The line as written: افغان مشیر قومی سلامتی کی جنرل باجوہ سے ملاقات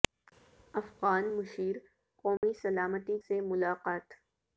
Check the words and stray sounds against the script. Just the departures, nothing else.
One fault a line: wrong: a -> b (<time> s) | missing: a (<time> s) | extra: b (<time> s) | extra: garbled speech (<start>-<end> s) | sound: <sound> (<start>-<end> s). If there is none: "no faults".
sound: dropout (2.4-2.4 s)
missing: کی جنرل باجوہ (3.2 s)